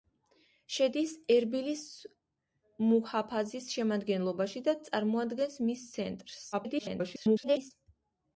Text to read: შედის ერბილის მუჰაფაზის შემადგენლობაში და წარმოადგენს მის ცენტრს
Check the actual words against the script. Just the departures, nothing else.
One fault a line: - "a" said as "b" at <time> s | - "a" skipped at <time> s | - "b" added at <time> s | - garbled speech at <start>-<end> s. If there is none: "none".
- garbled speech at 6.5-7.7 s